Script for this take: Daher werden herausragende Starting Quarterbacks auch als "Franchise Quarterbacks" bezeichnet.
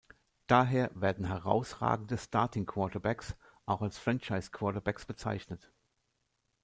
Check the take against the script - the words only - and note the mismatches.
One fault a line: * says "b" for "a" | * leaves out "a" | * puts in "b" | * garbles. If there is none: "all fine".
all fine